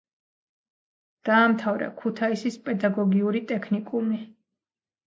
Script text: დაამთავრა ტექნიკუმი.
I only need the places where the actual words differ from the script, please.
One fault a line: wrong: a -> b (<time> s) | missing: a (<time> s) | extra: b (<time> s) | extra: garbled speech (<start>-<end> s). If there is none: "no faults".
extra: ქუთაისის პედაგოგიური (2.0 s)